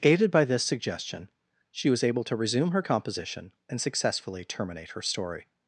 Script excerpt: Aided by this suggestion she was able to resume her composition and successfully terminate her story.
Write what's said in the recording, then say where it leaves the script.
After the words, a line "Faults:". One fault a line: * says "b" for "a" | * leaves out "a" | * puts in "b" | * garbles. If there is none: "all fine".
Aided by this suggestion she was able to resume her composition and successfully terminate her story.
Faults:
all fine